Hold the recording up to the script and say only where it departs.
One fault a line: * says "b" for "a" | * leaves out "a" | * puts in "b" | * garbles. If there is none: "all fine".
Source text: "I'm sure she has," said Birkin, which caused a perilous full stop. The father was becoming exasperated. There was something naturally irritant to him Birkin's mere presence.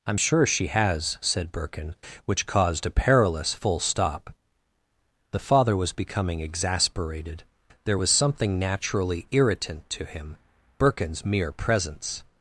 all fine